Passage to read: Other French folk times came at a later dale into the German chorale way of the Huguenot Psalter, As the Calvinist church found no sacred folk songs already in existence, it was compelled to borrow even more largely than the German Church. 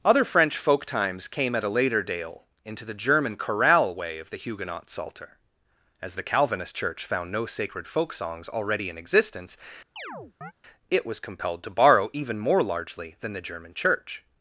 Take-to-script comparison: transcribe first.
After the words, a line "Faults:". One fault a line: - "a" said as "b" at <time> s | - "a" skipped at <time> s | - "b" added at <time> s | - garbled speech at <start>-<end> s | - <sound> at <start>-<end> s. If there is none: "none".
Other French folk times came at a later dale into the German chorale way of the Huguenot Psalter, As the Calvinist church found no sacred folk songs already in existence, it was compelled to borrow even more largely than the German Church.
Faults:
- chirp at 10.0-10.5 s